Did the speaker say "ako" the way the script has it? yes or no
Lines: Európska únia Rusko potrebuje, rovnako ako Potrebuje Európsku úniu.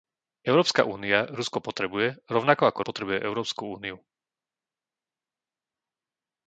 yes